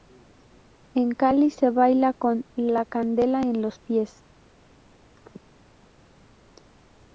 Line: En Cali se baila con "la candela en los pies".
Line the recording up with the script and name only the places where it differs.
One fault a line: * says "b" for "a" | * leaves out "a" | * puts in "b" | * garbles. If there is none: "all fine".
all fine